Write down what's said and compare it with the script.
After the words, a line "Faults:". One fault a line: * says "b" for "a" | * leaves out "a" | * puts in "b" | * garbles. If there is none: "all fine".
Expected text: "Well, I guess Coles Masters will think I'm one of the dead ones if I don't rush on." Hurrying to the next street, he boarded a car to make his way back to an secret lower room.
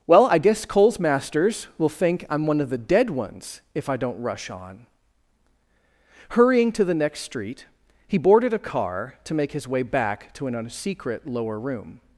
"Well, I guess Coles Masters will think I'm one of the dead ones if I don't rush on." Hurrying to the next street, he boarded a car to make his way back to an secret lower room.
Faults:
all fine